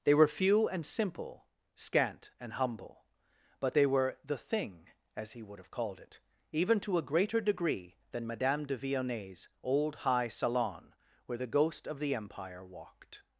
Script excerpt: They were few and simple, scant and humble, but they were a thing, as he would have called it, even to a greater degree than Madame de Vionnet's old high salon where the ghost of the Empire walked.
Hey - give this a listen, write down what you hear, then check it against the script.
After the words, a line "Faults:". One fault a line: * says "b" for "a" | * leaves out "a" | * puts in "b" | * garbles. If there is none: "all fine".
They were few and simple, scant and humble, but they were the thing, as he would have called it, even to a greater degree than Madame de Vionnet's old high salon where the ghost of the Empire walked.
Faults:
* says "the" for "a"